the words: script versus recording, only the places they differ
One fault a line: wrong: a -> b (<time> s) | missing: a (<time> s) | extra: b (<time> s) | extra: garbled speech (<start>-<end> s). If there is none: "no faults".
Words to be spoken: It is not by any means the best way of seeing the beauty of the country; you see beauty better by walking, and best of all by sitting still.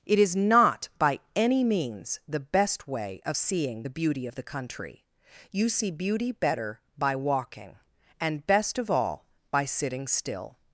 no faults